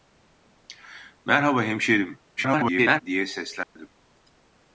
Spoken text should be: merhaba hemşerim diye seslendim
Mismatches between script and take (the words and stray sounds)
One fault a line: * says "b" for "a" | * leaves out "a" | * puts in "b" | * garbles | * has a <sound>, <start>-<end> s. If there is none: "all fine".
* garbles
* has a dropout, 3.6-3.8 s